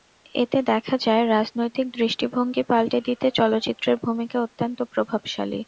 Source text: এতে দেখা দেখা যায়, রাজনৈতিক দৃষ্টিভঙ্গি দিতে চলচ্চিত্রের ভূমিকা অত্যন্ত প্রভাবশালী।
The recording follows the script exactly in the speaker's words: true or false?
false